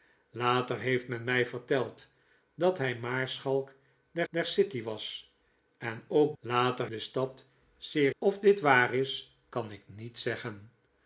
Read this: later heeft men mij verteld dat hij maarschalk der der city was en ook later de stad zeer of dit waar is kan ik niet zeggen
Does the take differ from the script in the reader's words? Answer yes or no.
no